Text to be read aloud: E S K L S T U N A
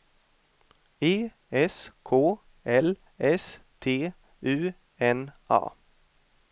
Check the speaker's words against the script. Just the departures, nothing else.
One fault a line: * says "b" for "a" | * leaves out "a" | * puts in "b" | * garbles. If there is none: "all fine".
all fine